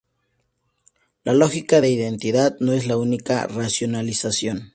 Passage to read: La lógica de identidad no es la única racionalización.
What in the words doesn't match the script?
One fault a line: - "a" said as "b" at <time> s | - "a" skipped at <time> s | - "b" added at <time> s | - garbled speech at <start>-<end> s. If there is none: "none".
none